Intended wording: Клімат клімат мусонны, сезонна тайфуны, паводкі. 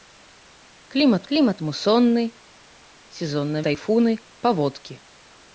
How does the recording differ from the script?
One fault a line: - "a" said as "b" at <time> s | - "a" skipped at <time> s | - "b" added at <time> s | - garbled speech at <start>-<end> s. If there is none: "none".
none